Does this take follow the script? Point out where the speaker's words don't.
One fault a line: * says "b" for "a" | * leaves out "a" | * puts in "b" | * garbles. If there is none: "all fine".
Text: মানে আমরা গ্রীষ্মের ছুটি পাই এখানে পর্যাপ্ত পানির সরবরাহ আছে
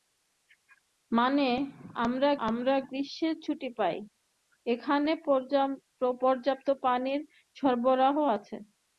* puts in "আমরা"